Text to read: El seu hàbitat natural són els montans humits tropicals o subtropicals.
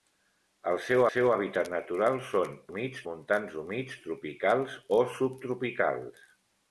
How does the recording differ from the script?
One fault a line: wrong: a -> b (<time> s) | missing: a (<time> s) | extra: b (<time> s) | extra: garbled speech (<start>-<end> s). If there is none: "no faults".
extra: seu (1.1 s)
wrong: els -> humits (2.7 s)